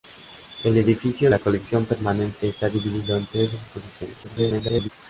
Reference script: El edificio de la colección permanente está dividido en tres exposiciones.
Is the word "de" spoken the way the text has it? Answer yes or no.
no